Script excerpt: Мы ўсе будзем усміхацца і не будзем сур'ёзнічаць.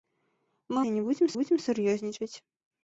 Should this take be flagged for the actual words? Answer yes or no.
yes